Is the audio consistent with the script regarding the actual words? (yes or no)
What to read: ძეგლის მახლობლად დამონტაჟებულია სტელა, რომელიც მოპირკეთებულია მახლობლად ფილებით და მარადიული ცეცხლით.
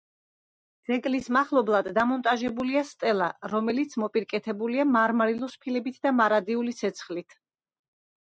no